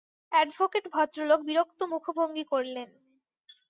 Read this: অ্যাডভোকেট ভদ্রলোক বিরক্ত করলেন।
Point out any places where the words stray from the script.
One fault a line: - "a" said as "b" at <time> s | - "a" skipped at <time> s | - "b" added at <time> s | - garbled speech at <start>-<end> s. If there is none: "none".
- "মুখভঙ্গি" added at 1.9 s